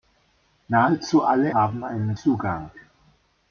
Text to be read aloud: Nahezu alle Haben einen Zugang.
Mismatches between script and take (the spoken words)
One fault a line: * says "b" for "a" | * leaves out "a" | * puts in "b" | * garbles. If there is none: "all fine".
all fine